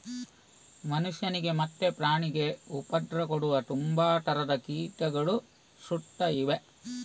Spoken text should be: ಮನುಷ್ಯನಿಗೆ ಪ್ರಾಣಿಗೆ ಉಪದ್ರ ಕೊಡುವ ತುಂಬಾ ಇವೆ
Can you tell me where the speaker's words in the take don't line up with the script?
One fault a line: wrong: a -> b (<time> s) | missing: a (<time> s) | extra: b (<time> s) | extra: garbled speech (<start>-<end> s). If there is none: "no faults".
extra: ಮತ್ತೆ (1.6 s)
extra: ತರದ ಕೀಟಗಳು ಸುತ್ತ (4.2 s)